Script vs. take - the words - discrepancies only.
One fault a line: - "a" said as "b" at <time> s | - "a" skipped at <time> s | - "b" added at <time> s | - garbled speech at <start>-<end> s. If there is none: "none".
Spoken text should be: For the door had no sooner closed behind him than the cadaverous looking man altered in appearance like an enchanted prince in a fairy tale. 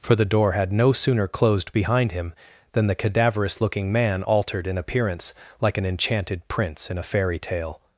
none